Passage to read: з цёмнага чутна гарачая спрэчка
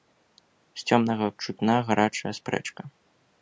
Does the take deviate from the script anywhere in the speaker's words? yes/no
no